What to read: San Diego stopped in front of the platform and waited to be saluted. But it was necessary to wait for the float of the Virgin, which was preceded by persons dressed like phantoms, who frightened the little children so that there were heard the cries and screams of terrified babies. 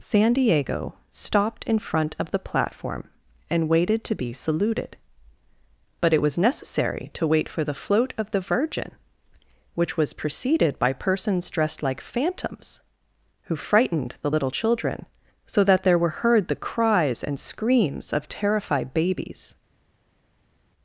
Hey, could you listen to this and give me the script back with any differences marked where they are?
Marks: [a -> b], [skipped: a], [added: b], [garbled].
San Diego stopped in front of the platform and waited to be saluted. But it was necessary to wait for the float of the Virgin, which was preceded by persons dressed like phantoms, who frightened the little children so that there were heard the cries and screams of terrified babies.